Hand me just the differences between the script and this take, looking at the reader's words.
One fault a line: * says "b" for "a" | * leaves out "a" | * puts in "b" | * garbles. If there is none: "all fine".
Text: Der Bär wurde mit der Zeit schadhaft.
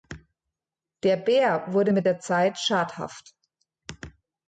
all fine